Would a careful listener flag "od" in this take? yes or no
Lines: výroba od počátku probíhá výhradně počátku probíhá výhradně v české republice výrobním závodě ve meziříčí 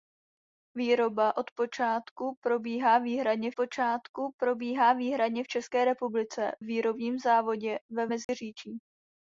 no